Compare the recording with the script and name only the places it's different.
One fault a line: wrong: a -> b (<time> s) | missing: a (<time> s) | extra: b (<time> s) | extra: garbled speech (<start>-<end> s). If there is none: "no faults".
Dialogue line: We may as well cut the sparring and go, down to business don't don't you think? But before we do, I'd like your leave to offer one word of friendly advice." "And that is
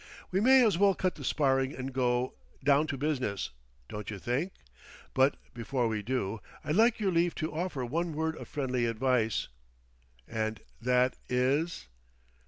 missing: don't (4.1 s)